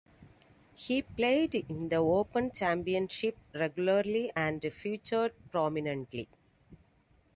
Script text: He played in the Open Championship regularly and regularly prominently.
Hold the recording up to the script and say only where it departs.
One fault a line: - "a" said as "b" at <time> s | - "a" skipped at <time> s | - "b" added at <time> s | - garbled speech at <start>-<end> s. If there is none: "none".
- "regularly" said as "featured" at 4.6 s